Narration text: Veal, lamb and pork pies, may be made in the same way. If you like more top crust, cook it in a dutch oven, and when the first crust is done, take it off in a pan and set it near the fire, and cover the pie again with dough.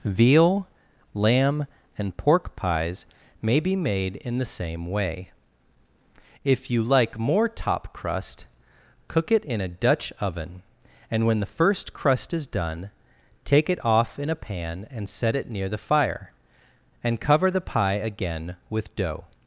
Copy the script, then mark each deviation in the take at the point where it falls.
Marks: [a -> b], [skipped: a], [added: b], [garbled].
Veal, lamb and pork pies, may be made in the same way. If you like more top crust, cook it in a dutch oven, and when the first crust is done, take it off in a pan and set it near the fire, and cover the pie again with dough.